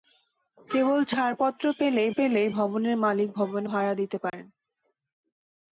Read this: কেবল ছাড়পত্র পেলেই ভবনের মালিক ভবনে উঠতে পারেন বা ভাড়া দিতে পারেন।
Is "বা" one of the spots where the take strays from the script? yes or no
yes